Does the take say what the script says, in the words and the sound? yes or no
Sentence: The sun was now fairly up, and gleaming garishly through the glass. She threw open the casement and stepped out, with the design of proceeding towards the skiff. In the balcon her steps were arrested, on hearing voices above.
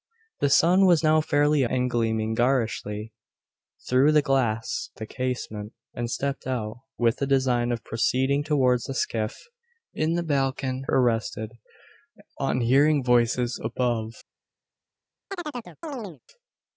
no